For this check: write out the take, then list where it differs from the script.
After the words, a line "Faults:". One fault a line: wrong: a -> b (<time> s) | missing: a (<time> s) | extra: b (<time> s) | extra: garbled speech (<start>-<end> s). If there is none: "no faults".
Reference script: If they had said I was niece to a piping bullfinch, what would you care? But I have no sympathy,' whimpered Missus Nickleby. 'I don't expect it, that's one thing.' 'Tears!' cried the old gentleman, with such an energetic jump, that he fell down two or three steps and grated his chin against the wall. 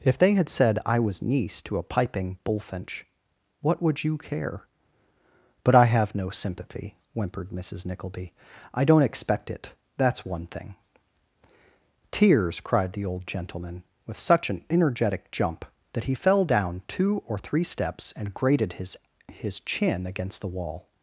If they had said I was niece to a piping bullfinch, what would you care? But I have no sympathy,' whimpered Missus Nickleby. 'I don't expect it, that's one thing.' 'Tears!' cried the old gentleman, with such an energetic jump, that he fell down two or three steps and grated his his chin against the wall.
Faults:
extra: his (19.3 s)